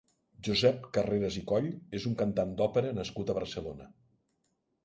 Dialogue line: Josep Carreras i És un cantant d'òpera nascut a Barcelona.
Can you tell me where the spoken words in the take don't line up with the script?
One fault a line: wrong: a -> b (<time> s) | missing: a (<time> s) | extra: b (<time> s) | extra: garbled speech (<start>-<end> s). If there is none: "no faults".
extra: Coll (1.5 s)